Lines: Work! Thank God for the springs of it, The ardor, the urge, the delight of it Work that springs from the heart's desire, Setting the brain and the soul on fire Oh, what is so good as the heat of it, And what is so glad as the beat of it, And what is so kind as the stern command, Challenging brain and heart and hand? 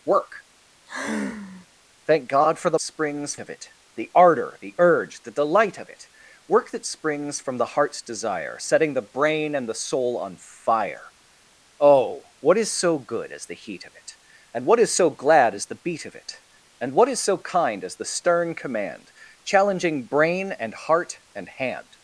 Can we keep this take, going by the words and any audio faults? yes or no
no